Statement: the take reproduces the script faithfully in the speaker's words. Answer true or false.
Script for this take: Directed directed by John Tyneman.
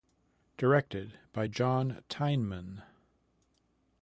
false